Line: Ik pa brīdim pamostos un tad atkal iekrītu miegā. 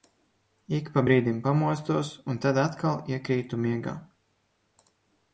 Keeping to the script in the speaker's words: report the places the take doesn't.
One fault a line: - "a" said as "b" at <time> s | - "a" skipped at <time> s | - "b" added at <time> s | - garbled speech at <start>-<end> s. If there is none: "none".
none